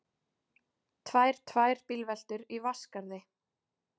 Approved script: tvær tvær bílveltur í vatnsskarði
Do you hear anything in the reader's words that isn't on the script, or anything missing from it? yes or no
no